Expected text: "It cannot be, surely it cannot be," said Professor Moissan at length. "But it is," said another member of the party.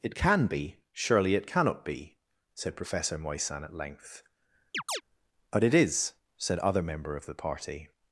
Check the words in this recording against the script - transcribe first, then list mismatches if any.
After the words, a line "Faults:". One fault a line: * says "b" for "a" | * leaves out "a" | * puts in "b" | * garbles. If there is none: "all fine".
"It can be, surely it cannot be," said Professor Moissan at length. "But it is," said other member of the party.
Faults:
* says "can" for "cannot"
* says "other" for "another"